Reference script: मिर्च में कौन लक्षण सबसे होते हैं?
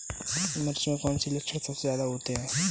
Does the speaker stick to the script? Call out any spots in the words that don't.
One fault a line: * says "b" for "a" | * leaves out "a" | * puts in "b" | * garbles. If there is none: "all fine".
* puts in "से"
* puts in "ज्यादा"